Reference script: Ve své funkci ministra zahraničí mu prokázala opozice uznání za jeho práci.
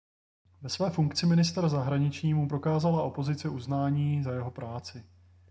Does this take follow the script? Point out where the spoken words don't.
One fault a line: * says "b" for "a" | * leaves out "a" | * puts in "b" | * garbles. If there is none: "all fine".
all fine